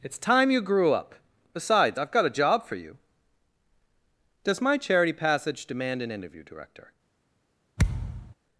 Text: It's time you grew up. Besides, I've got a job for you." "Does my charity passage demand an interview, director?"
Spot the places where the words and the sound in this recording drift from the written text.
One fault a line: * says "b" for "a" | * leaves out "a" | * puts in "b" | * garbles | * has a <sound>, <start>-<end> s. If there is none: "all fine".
* has a thud, 7.8-8.3 s